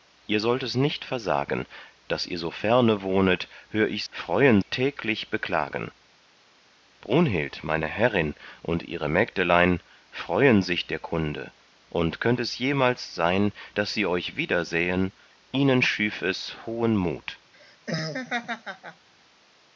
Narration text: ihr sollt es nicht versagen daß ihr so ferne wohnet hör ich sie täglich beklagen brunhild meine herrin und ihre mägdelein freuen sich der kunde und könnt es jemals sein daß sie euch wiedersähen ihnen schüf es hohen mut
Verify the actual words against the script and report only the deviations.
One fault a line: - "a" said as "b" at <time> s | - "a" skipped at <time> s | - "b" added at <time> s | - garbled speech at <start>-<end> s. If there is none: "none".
- "sie" said as "freuen" at 4.1 s